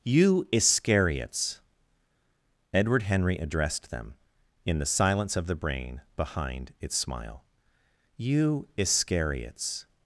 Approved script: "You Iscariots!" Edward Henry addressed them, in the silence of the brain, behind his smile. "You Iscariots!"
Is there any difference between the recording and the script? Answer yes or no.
yes